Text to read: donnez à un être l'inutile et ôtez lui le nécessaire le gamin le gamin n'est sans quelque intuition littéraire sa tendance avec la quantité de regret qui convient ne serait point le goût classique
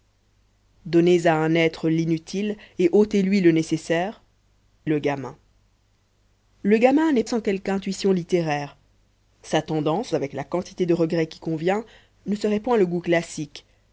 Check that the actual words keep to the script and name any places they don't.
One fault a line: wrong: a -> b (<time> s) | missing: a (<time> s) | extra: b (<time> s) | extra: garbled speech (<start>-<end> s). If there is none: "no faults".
no faults